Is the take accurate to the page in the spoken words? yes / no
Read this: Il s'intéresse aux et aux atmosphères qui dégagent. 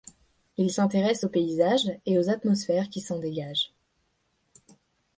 no